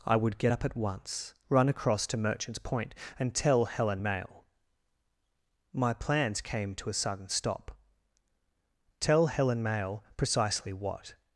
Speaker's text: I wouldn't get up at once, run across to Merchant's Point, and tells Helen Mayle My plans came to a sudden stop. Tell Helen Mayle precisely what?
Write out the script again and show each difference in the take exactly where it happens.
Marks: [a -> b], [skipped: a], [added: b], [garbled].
I [wouldn't -> would] get up at once, run across to Merchant's Point, and [tells -> tell] Helen Mayle My plans came to a sudden stop. Tell Helen Mayle precisely what?